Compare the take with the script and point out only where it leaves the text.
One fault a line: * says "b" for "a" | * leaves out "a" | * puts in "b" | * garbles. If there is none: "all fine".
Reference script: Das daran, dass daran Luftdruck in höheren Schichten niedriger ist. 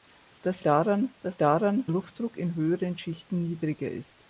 all fine